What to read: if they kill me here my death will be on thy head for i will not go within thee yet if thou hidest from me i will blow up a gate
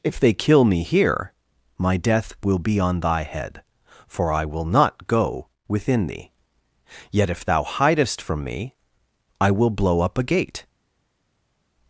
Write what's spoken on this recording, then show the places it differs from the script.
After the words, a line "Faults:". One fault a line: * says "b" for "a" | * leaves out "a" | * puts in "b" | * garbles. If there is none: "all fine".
if they kill me here my death will be on thy head for i will not go within thee yet if thou hidest from me i will blow up a gate
Faults:
all fine